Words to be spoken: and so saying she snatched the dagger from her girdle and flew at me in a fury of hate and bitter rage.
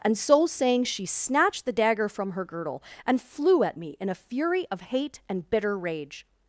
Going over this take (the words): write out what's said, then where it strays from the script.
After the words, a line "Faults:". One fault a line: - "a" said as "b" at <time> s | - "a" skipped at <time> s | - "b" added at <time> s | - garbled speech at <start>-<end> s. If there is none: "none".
and so saying she snatched the dagger from her girdle and flew at me in a fury of hate and bitter rage.
Faults:
none